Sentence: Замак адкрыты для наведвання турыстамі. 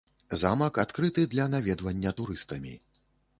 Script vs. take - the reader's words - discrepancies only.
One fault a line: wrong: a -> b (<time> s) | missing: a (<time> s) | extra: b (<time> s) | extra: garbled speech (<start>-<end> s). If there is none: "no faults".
no faults